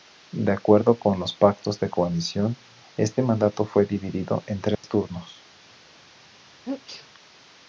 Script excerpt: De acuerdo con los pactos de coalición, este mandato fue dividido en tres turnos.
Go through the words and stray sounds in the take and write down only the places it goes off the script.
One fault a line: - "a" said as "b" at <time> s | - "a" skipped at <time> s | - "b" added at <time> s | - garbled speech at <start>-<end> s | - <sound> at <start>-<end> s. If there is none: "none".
- dropout at 4.8-4.8 s
- sneeze at 6.6-7.1 s